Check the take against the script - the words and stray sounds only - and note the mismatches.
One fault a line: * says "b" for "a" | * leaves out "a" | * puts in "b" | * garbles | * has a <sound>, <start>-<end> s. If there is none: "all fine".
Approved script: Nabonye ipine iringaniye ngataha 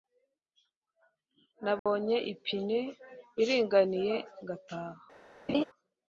* has a dropout, 1.8-1.9 s
* has a laugh, 5.5-5.6 s